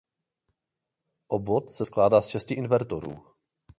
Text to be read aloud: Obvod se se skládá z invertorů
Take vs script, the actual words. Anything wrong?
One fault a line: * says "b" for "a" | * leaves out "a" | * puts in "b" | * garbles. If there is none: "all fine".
* leaves out "se"
* puts in "šesti"